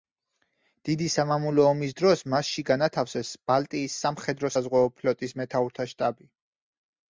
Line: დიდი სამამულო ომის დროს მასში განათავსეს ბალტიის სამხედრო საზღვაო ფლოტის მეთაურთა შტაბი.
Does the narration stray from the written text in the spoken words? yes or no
no